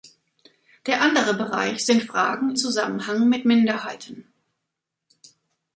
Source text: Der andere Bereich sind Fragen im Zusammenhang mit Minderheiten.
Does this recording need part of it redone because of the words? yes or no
yes